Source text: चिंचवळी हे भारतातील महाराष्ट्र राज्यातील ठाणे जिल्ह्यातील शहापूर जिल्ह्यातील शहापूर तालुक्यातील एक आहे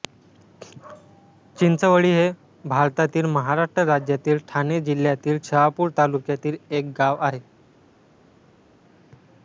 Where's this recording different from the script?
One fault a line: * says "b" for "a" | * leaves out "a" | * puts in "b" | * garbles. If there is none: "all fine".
* leaves out "जिल्ह्यातील शहापूर"
* puts in "गाव"